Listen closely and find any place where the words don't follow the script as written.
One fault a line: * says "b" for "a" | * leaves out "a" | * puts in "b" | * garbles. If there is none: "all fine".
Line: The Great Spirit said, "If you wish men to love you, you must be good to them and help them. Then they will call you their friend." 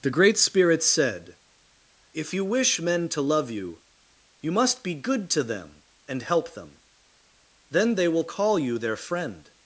all fine